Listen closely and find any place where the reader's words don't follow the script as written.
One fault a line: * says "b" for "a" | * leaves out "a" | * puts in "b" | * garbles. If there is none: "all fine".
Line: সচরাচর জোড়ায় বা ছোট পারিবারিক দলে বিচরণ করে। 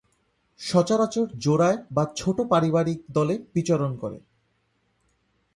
all fine